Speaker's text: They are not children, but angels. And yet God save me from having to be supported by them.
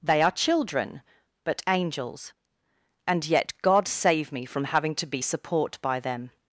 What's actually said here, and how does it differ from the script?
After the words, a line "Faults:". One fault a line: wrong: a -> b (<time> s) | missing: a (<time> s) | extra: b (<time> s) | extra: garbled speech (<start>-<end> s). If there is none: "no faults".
They are children, but angels. And yet God save me from having to be support by them.
Faults:
missing: not (0.3 s)
wrong: supported -> support (5.2 s)